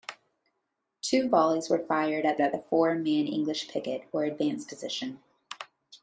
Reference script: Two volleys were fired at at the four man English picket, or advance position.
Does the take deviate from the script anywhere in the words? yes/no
no